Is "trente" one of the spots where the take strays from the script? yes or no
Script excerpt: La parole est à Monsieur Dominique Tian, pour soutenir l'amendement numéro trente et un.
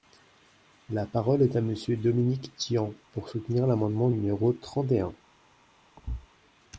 no